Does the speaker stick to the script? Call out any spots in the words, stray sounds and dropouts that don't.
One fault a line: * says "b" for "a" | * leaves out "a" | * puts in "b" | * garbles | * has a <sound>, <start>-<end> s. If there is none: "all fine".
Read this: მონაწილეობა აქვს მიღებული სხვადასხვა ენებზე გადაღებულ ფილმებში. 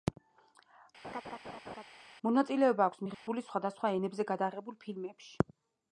* has a laugh, 1.0-1.8 s
* has a dropout, 3.1-3.3 s